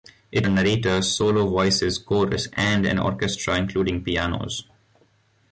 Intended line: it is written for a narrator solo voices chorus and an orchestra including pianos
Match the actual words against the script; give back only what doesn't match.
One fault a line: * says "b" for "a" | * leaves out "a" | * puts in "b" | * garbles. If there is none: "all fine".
* leaves out "is written for"